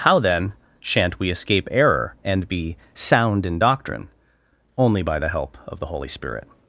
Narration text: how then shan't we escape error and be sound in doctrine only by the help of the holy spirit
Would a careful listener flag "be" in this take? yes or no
no